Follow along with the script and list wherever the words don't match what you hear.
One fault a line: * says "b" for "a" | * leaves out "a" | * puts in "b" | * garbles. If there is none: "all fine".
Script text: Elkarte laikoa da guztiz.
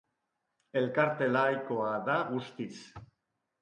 all fine